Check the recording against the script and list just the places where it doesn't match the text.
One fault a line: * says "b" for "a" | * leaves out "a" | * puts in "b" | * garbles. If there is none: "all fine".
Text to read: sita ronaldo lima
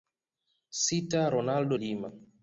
all fine